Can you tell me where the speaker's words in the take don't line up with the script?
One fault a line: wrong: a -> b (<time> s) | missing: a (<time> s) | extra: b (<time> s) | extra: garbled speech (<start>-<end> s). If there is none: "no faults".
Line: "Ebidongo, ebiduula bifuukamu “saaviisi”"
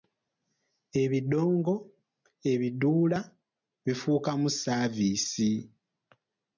no faults